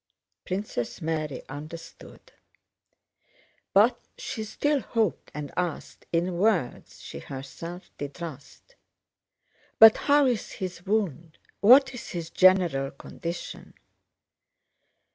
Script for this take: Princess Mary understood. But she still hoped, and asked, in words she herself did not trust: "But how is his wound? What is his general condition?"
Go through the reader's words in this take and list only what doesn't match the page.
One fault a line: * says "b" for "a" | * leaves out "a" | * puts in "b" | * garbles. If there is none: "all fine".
* leaves out "not"